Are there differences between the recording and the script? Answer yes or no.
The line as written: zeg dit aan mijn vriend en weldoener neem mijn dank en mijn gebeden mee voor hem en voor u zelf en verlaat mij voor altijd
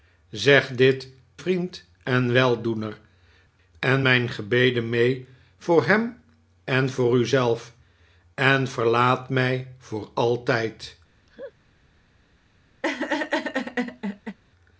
yes